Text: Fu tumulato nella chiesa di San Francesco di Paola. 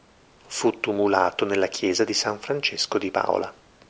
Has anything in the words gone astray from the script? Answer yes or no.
no